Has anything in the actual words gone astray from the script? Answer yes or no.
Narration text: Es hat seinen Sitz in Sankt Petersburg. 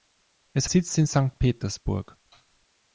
yes